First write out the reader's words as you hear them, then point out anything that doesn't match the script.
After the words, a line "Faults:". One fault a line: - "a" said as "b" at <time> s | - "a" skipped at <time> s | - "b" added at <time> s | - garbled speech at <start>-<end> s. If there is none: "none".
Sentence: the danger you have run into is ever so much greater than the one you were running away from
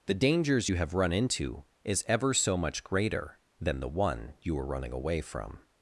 the dangers you have run into is ever so much greater than the one you were running away from
Faults:
- "danger" said as "dangers" at 0.1 s